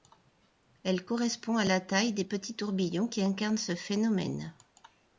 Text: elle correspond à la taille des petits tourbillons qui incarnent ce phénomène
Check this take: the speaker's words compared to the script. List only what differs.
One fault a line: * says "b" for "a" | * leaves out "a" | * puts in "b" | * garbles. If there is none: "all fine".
all fine